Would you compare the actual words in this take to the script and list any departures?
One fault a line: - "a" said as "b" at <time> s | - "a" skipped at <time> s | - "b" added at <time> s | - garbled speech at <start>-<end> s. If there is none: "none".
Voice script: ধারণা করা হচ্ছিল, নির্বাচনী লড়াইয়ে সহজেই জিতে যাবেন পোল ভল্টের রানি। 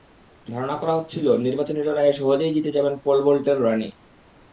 none